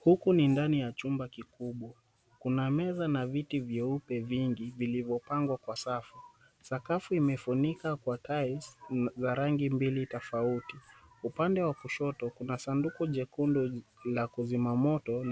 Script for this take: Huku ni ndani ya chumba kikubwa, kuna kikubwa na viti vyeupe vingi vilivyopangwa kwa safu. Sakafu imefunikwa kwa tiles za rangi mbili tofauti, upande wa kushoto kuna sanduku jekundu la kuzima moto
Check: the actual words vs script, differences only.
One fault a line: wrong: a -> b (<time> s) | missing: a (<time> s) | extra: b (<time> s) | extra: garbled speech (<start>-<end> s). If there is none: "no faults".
wrong: kikubwa -> meza (2.7 s)